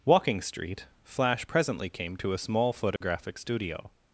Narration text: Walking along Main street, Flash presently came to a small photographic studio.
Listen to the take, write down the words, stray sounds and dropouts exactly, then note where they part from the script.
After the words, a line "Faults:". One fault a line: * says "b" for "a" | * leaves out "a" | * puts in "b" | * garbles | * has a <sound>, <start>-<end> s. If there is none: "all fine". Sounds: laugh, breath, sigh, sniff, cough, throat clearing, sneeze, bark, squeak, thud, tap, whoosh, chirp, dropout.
Walking street, Flash presently came to a small photographic studio.
Faults:
* leaves out "along Main"
* has a dropout, 3.0-3.0 s